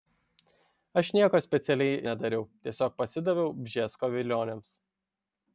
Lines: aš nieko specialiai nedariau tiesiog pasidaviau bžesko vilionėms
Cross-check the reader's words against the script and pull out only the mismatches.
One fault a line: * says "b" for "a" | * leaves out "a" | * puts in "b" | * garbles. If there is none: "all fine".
all fine